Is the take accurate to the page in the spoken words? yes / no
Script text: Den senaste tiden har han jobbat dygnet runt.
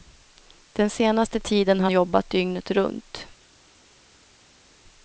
no